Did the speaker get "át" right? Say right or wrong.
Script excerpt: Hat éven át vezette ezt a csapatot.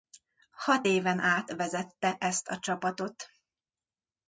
right